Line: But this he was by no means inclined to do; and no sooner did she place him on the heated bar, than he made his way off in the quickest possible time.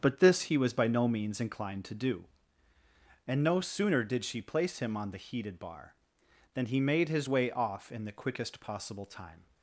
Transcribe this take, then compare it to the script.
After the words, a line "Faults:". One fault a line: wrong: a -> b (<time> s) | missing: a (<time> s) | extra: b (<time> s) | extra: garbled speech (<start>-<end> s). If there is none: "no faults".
But this he was by no means inclined to do; and no sooner did she place him on the heated bar, than he made his way off in the quickest possible time.
Faults:
no faults